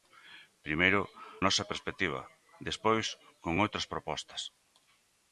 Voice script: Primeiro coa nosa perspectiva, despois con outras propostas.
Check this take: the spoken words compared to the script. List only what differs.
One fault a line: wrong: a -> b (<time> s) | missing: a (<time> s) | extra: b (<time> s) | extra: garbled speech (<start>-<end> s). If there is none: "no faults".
missing: coa (1.0 s)